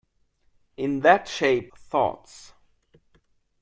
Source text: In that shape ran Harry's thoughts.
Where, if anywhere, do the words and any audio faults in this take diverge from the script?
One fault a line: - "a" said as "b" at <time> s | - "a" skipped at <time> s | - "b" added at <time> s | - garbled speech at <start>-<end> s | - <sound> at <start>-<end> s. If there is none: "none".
- "ran Harry's" skipped at 1.7 s